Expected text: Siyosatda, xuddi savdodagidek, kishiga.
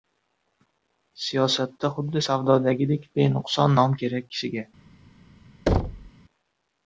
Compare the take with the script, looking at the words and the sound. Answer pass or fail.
fail